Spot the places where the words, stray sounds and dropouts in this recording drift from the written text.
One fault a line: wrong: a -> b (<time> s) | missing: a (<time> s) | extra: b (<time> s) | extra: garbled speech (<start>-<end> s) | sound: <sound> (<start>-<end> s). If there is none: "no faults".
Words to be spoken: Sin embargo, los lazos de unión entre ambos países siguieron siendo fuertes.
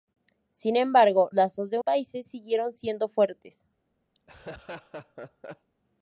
missing: los (1.3 s)
missing: unión entre ambos (1.8 s)
sound: laugh (4.1-5.7 s)